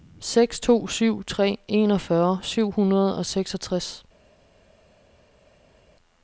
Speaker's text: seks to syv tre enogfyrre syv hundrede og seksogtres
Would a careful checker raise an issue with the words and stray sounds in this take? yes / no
no